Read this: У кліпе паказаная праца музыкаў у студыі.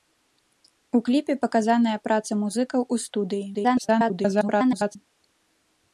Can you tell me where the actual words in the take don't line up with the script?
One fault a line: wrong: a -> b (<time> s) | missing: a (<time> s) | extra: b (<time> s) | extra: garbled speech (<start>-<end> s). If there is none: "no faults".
extra: garbled speech (3.5-5.0 s)